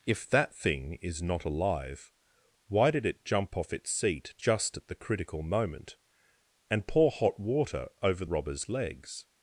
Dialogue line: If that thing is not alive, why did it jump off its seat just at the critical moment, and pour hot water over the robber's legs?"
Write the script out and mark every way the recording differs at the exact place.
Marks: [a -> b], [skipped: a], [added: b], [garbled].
If that thing is not alive, why did it jump off its seat just at the critical moment, and pour hot water over [skipped: the] robber's legs?"